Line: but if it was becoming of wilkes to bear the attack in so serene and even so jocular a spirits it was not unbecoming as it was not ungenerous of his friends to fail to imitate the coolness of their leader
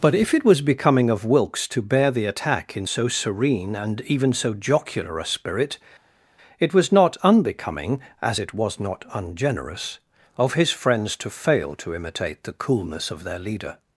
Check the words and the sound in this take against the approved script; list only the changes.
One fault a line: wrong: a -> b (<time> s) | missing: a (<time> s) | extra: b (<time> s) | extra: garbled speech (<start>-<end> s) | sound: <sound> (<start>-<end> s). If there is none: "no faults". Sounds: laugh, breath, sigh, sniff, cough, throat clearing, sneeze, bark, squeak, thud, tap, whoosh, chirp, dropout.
wrong: spirits -> spirit (5.2 s)